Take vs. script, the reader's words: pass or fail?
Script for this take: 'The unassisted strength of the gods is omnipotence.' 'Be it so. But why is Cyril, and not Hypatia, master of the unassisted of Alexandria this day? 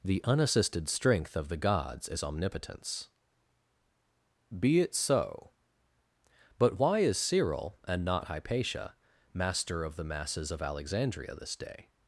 fail